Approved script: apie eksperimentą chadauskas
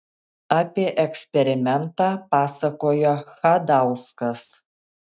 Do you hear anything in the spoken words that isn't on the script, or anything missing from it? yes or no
yes